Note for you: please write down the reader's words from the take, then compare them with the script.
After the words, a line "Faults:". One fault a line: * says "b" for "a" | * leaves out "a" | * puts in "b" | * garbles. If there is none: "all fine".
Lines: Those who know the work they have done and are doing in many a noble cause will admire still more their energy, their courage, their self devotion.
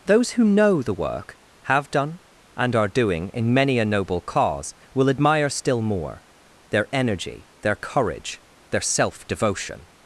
Those who know the work have done and are doing in many a noble cause will admire still more their energy, their courage, their self devotion.
Faults:
* leaves out "they"